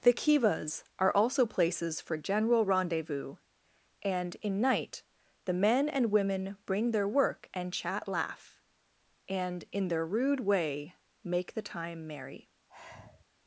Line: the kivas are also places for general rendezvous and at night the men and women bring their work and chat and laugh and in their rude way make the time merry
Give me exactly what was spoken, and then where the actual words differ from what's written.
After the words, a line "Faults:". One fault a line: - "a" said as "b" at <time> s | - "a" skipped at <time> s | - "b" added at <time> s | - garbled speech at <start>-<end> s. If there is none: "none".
the kivas are also places for general rendezvous and in night the men and women bring their work and chat laugh and in their rude way make the time merry
Faults:
- "at" said as "in" at 4.4 s
- "and" skipped at 8.1 s